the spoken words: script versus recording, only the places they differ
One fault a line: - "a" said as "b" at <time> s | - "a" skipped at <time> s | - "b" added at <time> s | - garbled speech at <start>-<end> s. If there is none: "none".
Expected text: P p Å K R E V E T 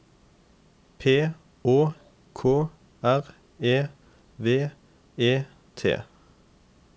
- "p" skipped at 1.3 s